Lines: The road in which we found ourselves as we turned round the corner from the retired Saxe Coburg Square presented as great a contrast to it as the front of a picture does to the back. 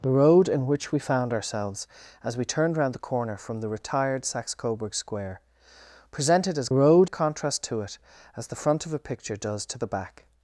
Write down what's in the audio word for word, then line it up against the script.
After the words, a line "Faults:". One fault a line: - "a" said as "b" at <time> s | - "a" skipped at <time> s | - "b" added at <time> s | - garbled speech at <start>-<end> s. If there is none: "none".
The road in which we found ourselves as we turned round the corner from the retired Saxe Coburg Square presented as road a contrast to it as the front of a picture does to the back.
Faults:
- "great" said as "road" at 6.7 s